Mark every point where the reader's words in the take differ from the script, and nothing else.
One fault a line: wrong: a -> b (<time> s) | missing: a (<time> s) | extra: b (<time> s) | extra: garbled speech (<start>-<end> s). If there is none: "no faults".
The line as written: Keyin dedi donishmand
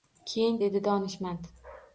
no faults